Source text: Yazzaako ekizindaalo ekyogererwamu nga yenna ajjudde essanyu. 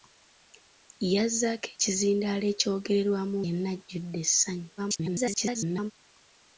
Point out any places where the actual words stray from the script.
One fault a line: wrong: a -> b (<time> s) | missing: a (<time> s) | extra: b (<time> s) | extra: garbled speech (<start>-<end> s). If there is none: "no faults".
missing: nga (3.4 s)
extra: garbled speech (4.8-5.9 s)